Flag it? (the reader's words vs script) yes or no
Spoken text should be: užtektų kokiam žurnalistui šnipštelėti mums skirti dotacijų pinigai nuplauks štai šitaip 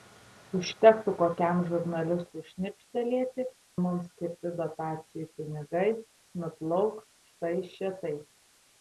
no